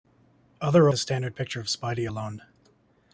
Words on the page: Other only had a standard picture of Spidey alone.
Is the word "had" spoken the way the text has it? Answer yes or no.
no